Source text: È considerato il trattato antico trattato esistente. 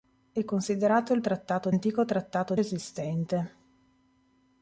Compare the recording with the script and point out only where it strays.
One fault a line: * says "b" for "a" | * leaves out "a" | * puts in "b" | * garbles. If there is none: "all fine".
all fine